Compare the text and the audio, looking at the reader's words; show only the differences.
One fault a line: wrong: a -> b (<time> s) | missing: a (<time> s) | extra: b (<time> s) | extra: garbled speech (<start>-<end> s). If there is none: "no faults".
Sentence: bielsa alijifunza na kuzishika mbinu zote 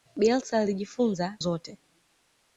missing: na kuzishika mbinu (1.4 s)